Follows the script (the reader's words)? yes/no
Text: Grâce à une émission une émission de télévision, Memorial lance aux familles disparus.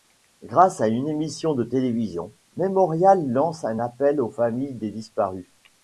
no